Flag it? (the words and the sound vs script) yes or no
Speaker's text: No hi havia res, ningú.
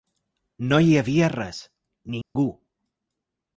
yes